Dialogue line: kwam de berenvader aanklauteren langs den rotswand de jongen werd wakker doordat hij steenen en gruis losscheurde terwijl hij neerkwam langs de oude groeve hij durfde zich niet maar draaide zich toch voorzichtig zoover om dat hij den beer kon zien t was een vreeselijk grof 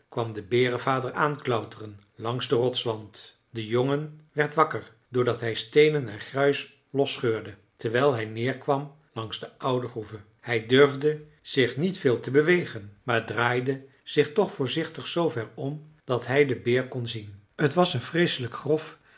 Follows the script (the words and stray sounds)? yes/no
no